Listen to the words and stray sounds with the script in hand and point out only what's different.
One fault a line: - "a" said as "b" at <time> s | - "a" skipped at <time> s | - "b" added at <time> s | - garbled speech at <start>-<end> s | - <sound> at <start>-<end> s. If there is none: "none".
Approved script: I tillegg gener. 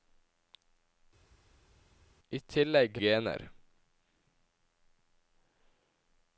none